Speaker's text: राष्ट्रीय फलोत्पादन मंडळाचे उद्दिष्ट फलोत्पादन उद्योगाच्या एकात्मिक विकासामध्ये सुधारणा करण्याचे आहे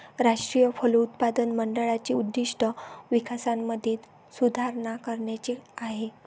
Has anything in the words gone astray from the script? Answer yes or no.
yes